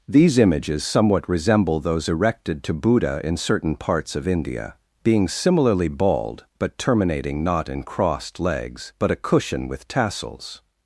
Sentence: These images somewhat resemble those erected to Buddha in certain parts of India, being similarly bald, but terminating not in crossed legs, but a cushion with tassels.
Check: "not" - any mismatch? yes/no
no